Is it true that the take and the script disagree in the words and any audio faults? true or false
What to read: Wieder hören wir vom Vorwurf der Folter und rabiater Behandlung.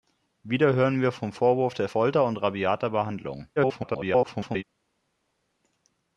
true